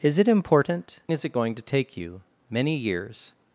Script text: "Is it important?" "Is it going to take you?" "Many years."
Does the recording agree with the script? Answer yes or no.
yes